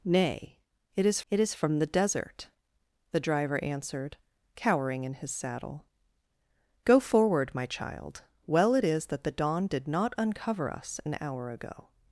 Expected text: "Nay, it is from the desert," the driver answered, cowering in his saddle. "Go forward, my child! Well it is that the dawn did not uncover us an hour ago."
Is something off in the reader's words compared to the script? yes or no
yes